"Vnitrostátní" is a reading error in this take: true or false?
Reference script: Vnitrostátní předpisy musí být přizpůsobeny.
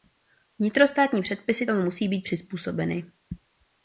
false